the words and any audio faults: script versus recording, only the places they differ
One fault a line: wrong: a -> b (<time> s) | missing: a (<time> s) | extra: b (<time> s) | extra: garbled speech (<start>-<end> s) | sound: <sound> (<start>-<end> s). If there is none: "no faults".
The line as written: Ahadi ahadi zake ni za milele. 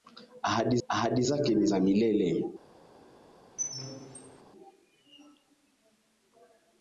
sound: squeak (3.6-4.4 s)